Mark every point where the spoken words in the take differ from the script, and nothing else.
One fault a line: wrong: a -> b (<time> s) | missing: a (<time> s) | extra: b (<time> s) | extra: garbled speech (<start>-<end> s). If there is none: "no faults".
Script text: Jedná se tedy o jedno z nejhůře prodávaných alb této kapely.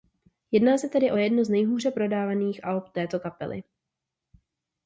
no faults